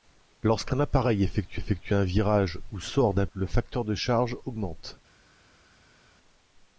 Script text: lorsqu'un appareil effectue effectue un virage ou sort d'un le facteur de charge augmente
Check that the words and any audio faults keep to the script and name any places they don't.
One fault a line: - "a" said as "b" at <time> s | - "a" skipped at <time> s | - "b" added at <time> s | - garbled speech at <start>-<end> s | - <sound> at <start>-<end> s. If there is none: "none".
none